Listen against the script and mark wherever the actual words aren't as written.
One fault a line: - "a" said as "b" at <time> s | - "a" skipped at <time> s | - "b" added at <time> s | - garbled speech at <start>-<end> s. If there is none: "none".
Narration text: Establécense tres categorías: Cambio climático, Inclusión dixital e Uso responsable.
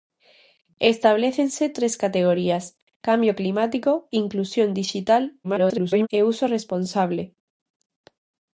- garbled speech at 5.4-6.1 s